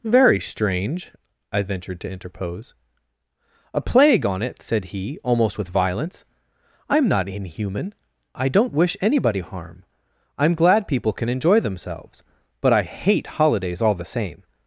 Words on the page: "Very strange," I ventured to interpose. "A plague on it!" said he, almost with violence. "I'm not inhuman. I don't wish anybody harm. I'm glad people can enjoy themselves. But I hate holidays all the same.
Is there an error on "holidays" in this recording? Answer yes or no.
no